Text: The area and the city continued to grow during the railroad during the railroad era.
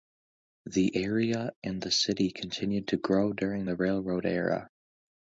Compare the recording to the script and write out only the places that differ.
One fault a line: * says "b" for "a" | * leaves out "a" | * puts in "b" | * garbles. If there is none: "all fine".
* leaves out "during the railroad"